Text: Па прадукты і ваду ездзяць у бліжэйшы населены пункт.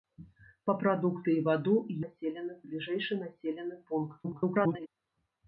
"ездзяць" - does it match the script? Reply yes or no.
no